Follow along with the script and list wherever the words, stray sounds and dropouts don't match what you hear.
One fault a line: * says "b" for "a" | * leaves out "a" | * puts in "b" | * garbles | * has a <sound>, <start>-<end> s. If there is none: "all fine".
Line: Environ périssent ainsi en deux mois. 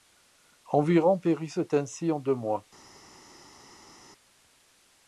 all fine